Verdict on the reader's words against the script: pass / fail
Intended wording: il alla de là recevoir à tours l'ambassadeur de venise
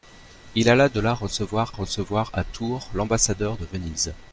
fail